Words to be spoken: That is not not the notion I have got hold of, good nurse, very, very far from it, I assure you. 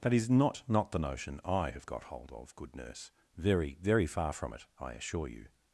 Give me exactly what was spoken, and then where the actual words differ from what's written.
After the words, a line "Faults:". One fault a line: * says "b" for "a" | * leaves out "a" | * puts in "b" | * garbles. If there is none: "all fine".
That is not not the notion I have got hold of, good nurse, very, very far from it, I assure you.
Faults:
all fine